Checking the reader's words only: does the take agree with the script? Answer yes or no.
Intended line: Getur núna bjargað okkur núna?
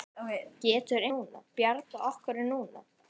yes